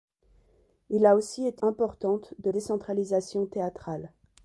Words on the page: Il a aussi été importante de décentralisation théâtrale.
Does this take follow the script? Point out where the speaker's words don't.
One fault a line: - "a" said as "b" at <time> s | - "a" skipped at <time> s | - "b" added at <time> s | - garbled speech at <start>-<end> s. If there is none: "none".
none